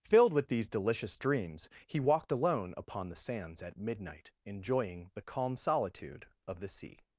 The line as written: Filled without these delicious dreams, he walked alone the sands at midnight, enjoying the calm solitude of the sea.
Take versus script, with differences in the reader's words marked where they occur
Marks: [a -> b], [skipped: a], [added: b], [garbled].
Filled [without -> with] these delicious dreams, he walked alone [added: upon] the sands at midnight, enjoying the calm solitude of the sea.